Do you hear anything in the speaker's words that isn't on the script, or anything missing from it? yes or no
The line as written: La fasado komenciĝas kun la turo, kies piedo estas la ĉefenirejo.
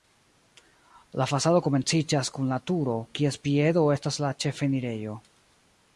no